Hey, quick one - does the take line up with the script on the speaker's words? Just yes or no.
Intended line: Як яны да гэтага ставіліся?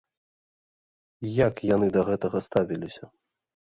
yes